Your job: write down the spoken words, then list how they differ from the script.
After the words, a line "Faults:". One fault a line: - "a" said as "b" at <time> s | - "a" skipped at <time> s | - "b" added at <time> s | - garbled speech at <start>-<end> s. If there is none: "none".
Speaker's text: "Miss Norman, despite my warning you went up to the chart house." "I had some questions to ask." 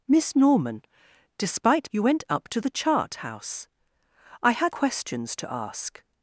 "Miss Norman, despite you went up to the chart house." "I had questions to ask."
Faults:
- "my warning" skipped at 1.9 s
- "some" skipped at 4.7 s